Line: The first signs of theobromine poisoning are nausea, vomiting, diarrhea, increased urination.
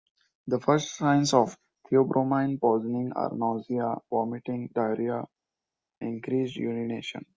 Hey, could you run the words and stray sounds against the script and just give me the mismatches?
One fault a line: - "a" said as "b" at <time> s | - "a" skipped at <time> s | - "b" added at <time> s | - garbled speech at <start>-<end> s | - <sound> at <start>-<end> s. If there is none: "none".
none